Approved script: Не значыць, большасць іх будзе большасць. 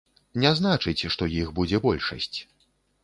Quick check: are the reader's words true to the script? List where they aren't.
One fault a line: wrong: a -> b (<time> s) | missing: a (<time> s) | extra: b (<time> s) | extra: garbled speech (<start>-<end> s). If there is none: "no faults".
wrong: большасць -> што (1.1 s)